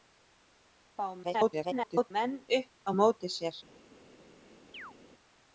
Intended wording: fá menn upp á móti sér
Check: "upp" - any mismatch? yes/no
no